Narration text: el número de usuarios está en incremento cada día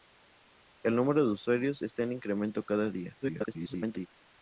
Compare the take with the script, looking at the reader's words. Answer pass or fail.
fail